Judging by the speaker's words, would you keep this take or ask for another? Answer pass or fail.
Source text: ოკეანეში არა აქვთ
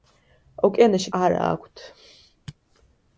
pass